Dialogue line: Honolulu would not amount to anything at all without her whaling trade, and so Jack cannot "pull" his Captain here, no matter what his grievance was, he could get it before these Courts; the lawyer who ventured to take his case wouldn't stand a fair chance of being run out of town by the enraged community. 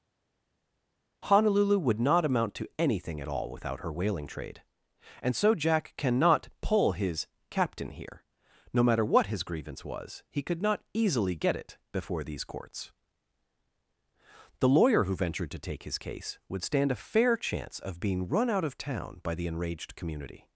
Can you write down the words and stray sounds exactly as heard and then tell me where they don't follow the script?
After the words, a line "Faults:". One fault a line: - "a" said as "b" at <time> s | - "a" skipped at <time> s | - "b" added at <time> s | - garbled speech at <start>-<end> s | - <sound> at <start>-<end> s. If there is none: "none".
Honolulu would not amount to anything at all without her whaling trade, and so Jack cannot "pull" his Captain here, no matter what his grievance was, he could not easily get it before these Courts; the lawyer who ventured to take his case would stand a fair chance of being run out of town by the enraged community.
Faults:
- "not easily" added at 10.6 s
- "wouldn't" said as "would" at 16.5 s